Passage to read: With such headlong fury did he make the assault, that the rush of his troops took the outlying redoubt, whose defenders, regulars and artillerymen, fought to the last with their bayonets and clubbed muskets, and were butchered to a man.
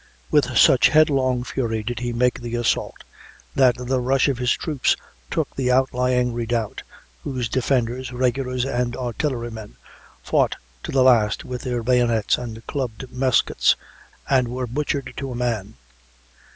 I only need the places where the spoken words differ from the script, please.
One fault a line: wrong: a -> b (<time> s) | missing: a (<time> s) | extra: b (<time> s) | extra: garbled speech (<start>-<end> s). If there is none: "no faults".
no faults